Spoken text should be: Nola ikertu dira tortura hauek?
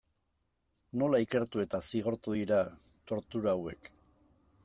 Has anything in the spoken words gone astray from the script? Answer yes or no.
yes